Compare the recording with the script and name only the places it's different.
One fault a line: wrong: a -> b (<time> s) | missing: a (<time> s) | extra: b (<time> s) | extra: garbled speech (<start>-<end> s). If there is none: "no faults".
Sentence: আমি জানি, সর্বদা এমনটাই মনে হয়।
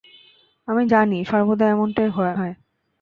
missing: মনে (2.1 s)